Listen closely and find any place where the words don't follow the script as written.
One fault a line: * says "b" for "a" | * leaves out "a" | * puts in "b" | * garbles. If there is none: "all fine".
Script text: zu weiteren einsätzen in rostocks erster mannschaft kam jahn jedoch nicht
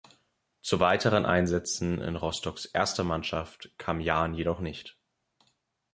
all fine